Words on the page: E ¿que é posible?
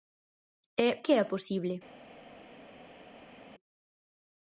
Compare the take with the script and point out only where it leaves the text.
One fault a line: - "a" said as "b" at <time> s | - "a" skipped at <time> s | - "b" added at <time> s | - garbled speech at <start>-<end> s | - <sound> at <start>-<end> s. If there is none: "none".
none